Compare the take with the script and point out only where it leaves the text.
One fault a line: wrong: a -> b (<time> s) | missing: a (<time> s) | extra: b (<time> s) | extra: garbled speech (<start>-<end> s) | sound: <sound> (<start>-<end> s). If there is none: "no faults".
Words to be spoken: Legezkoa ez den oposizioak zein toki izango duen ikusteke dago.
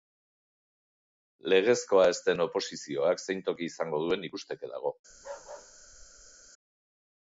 sound: bark (5.1-6.5 s)